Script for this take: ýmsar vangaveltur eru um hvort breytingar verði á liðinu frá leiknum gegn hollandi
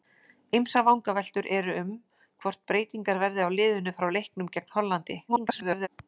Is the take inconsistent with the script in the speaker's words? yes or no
yes